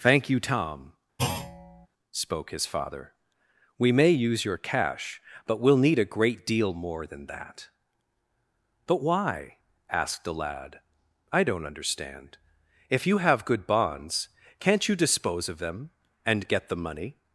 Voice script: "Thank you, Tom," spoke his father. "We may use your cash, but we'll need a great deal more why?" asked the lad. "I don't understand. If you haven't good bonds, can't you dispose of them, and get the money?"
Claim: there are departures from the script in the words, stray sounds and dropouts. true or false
true